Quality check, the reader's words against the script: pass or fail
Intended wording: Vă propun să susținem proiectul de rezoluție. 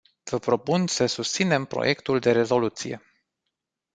pass